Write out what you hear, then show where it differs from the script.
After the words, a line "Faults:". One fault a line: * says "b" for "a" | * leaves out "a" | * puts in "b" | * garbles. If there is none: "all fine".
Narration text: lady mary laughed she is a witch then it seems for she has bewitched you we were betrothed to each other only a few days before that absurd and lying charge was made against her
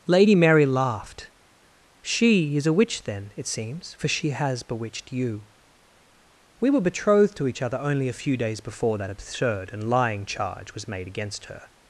lady mary laughed she is a witch then it seems for she has bewitched you we were betrothed to each other only a few days before that absurd and lying charge was made against her
Faults:
all fine